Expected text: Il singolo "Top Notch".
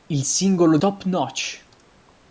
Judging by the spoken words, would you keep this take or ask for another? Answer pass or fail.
pass